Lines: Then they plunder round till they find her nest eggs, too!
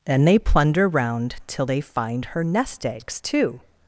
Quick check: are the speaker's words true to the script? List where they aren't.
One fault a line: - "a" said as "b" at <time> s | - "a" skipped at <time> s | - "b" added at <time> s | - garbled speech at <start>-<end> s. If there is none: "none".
none